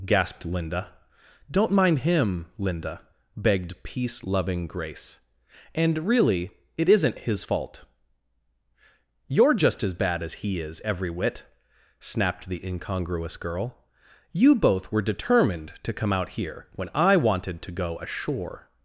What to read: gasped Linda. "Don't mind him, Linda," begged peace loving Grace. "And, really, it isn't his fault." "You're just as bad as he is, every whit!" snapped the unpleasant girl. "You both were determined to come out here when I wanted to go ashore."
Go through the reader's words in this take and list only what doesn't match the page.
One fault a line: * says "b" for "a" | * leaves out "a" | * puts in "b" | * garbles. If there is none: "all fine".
* says "incongruous" for "unpleasant"